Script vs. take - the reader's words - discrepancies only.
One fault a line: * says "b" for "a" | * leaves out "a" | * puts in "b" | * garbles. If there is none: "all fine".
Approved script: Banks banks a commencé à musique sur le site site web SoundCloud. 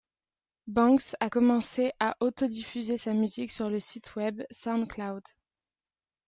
* leaves out "banks"
* puts in "auto diffuser sa"
* leaves out "site"